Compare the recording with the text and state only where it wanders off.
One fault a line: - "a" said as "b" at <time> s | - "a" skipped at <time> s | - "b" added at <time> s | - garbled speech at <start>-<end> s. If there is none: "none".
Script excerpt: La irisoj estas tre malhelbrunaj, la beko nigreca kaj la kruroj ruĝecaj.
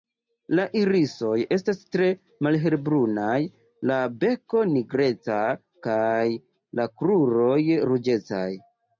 none